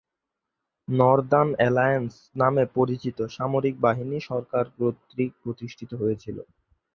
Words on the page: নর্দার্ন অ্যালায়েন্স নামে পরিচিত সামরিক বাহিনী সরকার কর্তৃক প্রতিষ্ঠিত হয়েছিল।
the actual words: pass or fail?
pass